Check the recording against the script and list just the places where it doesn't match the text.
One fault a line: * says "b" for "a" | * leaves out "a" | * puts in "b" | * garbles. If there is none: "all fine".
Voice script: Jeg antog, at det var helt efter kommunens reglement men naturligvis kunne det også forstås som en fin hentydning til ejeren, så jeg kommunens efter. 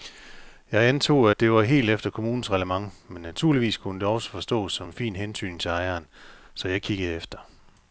* says "kiggede" for "kommunens"